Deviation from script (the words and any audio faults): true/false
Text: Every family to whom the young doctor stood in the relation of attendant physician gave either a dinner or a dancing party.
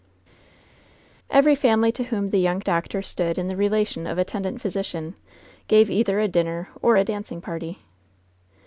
false